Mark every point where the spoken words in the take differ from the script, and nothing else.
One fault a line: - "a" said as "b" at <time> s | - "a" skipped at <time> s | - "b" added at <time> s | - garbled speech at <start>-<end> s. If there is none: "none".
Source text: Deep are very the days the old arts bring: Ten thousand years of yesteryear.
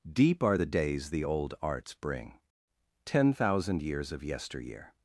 - "very" skipped at 0.6 s